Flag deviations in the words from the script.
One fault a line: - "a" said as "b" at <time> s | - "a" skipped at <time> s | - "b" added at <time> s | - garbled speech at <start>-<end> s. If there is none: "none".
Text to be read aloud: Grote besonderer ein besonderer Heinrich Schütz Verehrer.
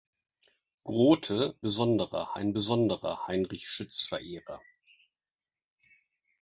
none